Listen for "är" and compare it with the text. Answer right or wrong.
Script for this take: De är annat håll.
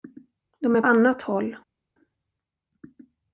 right